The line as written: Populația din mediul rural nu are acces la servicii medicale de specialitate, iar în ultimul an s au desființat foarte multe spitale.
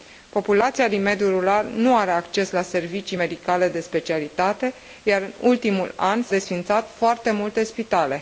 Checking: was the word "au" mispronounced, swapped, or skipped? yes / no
yes